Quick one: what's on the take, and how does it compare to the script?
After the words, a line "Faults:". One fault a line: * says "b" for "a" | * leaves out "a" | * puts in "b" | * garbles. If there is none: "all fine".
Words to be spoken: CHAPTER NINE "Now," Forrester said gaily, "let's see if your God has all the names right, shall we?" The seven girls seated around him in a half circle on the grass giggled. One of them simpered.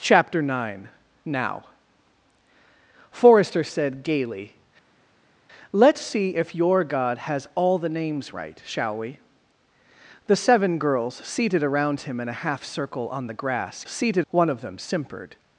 CHAPTER NINE "Now," Forrester said gaily, "let's see if your God has all the names right, shall we?" The seven girls seated around him in a half circle on the grass seated. One of them simpered.
Faults:
* says "seated" for "giggled"